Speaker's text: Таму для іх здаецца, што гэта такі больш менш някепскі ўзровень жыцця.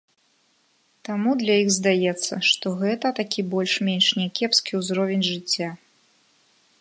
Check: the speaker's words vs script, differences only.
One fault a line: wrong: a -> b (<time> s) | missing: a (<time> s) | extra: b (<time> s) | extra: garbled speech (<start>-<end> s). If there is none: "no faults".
no faults